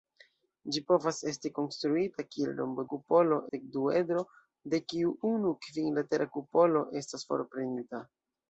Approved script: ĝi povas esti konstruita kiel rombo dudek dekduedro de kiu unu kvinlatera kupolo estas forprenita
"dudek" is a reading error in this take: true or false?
true